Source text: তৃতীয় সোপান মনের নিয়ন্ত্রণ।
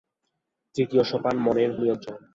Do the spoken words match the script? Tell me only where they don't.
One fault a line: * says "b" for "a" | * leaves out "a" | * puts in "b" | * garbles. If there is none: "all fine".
all fine